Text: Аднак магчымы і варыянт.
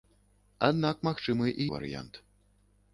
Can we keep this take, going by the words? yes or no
yes